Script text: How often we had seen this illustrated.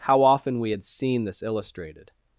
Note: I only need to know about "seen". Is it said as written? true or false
true